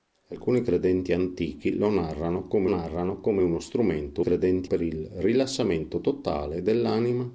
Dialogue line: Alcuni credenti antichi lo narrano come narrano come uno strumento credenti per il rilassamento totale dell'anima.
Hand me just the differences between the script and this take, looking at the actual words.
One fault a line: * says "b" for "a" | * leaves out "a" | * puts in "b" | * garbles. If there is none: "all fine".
all fine